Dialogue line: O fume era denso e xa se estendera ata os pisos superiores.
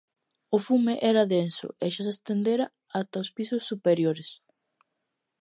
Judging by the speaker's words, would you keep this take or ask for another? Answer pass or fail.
pass